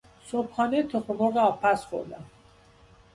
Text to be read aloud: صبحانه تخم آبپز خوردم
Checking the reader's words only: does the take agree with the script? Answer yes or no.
no